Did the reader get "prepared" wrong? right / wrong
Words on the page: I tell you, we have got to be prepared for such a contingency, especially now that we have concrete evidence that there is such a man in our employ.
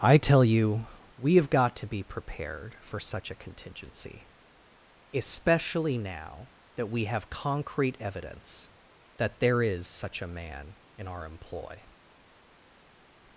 right